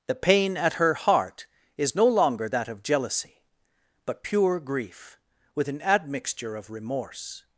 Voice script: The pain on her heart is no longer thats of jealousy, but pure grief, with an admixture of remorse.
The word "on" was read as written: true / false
false